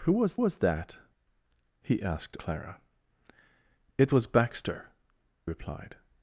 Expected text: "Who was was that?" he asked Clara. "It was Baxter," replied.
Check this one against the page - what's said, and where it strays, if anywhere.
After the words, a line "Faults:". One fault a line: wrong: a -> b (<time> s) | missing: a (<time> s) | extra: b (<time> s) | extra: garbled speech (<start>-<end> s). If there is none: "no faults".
"Who was was that?" he asked Clara. "It was Baxter," replied.
Faults:
no faults